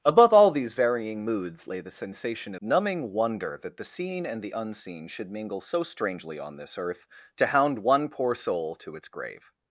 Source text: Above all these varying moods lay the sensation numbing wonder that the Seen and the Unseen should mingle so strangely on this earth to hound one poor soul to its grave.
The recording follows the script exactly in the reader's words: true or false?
true